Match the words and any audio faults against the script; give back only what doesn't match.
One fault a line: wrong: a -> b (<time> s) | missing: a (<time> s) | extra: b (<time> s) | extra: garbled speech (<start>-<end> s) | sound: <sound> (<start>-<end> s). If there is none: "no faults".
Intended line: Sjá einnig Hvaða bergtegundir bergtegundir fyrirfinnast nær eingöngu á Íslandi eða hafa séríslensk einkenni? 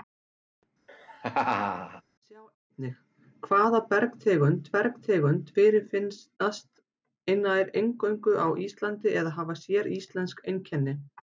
sound: laugh (0.9-2.0 s)